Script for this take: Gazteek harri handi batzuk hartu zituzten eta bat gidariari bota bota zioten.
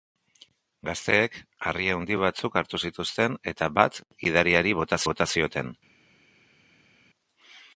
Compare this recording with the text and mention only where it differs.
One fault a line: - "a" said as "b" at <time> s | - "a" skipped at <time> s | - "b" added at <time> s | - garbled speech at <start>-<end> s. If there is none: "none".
none